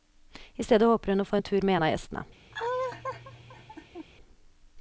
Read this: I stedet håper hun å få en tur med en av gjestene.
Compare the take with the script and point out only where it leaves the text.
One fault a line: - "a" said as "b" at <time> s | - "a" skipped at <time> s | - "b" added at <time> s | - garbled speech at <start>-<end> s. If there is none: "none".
none